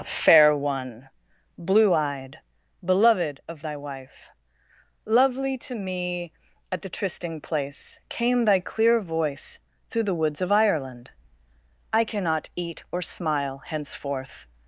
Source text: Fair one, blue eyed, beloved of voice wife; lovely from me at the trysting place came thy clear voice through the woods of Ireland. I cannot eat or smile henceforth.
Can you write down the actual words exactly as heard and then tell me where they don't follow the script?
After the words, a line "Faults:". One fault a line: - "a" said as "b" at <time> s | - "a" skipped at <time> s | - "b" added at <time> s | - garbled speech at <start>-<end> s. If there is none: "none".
Fair one, blue eyed, beloved of thy wife; lovely to me at the trysting place came thy clear voice through the woods of Ireland. I cannot eat or smile henceforth.
Faults:
- "voice" said as "thy" at 3.6 s
- "from" said as "to" at 5.6 s